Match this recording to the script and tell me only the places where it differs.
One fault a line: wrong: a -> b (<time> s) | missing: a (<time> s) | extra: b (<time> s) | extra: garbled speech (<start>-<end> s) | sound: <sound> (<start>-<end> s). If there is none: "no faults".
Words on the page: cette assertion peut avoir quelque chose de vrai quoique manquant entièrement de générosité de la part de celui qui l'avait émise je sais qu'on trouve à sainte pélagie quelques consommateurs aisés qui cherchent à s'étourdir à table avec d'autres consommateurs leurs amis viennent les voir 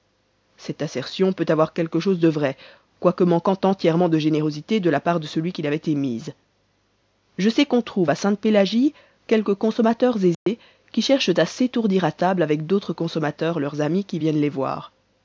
sound: dropout (10.3-10.5 s)
extra: qui (14.1 s)